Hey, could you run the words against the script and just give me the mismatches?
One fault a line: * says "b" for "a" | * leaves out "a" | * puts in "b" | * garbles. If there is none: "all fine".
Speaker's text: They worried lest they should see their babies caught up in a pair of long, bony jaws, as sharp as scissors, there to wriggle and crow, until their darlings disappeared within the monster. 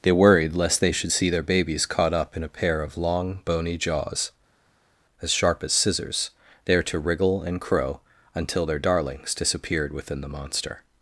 all fine